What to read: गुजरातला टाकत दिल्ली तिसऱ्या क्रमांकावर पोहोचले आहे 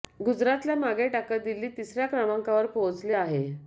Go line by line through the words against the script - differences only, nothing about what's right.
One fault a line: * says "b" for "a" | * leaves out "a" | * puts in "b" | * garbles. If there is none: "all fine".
* puts in "मागे"